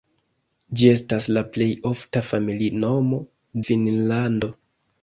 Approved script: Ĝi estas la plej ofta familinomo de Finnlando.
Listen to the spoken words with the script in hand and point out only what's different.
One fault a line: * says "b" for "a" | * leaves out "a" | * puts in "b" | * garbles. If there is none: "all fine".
* leaves out "de"